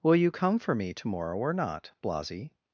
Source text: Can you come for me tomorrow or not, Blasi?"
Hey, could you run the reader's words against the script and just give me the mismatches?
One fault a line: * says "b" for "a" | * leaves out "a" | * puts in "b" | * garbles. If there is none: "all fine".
* says "Will" for "Can"